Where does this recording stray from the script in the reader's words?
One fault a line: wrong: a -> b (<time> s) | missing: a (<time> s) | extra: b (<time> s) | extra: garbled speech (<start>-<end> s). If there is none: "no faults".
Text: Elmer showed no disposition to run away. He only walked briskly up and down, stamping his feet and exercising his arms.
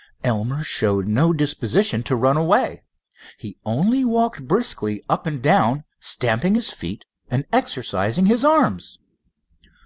no faults